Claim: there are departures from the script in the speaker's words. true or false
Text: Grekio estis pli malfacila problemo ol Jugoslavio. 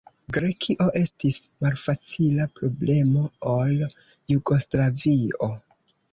true